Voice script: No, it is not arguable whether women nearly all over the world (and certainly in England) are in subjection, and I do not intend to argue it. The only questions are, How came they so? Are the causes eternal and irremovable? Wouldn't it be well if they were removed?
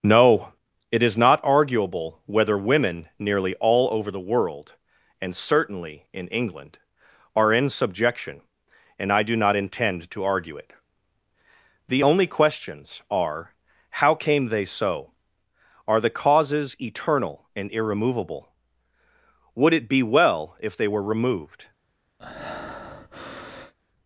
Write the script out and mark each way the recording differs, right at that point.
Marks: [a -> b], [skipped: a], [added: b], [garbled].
No, it is not arguable whether women nearly all over the world (and certainly in England) are in subjection, and I do not intend to argue it. The only questions are, How came they so? Are the causes eternal and irremovable? [Wouldn't -> Would] it be well if they were removed?